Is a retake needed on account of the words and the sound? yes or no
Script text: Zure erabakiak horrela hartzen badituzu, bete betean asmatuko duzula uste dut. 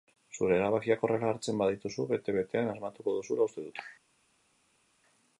no